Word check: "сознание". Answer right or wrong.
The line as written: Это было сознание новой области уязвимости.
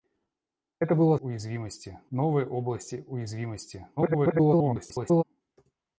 wrong